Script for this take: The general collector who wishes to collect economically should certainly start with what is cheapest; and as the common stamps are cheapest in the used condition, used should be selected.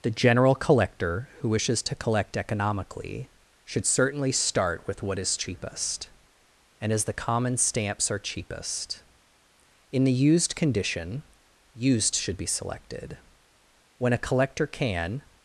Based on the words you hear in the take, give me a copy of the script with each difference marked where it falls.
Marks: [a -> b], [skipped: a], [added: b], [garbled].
The general collector who wishes to collect economically should certainly start with what is cheapest; and as the common stamps are cheapest in the used condition, used should be selected. [added: When a collector can]